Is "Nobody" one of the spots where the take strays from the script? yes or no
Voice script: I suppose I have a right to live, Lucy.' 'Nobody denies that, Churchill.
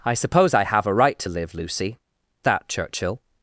yes